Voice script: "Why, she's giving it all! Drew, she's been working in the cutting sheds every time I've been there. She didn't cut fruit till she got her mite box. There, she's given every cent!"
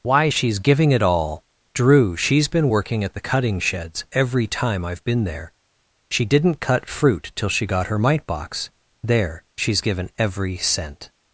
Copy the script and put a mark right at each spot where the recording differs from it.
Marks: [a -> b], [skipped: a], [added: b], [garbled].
"Why, she's giving it all! Drew, she's been working [in -> at] the cutting sheds every time I've been there. She didn't cut fruit till she got her mite box. There, she's given every cent!"